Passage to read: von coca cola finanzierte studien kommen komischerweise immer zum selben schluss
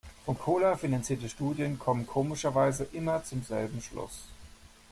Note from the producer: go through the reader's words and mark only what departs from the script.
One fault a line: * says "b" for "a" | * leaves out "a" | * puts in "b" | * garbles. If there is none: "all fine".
* leaves out "coca"